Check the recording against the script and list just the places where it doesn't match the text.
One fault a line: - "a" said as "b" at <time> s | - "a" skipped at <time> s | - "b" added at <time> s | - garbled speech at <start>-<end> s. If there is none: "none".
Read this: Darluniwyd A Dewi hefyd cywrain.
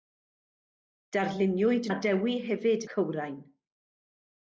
none